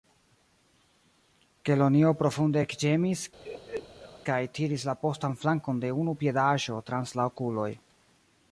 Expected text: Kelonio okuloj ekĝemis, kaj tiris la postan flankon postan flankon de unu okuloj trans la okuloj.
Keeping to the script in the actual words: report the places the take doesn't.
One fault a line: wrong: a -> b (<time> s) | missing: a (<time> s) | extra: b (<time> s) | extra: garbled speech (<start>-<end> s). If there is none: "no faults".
wrong: okuloj -> profunde (2.2 s)
missing: postan flankon (5.8 s)
wrong: okuloj -> piedaĵo (6.3 s)